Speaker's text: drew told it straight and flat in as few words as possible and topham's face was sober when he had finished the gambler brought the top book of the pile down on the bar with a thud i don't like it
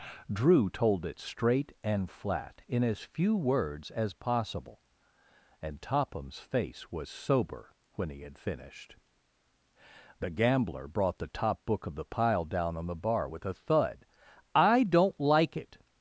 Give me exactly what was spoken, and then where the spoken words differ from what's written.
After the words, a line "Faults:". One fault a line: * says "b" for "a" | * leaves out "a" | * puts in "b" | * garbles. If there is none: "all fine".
drew told it straight and flat in as few words as possible and topham's face was sober when he had finished the gambler brought the top book of the pile down on the bar with a thud i don't like it
Faults:
all fine